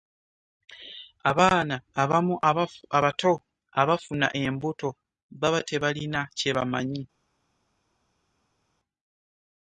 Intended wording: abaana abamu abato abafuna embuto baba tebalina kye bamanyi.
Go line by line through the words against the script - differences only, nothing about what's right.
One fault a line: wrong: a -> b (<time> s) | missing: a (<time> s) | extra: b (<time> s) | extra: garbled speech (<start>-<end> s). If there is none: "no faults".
no faults